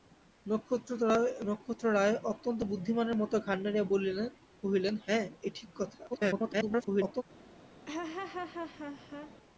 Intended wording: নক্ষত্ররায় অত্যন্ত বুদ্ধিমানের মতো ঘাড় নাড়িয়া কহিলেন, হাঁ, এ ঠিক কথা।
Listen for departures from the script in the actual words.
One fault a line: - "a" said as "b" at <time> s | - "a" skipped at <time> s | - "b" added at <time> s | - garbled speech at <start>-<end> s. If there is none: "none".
- garbled speech at 6.1-7.2 s